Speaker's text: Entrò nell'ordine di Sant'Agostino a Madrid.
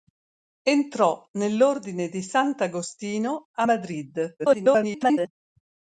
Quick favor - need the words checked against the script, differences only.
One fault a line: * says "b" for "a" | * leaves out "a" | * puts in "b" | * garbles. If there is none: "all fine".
* garbles